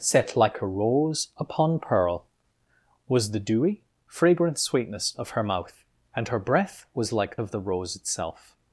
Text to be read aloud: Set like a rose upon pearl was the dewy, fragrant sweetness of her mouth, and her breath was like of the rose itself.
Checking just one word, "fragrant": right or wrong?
right